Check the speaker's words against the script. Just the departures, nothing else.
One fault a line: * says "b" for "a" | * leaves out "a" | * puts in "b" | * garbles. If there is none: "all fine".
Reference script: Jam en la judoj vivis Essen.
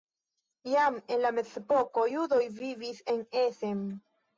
* puts in "mezepoko"
* puts in "en"